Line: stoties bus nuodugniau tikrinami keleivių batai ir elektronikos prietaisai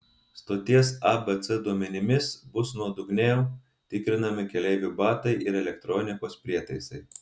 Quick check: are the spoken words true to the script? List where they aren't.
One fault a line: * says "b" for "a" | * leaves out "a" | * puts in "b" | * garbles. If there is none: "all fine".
* puts in "abc duomenimis"